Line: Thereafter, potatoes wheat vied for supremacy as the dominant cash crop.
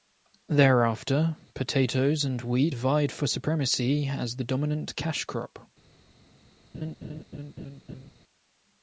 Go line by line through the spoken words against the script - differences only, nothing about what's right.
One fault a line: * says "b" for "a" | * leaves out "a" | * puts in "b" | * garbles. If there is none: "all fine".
* puts in "and"